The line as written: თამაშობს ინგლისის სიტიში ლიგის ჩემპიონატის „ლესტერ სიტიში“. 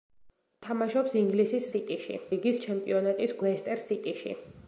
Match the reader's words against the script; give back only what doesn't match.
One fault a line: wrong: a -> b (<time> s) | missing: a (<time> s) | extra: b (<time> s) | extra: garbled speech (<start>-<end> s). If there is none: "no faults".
no faults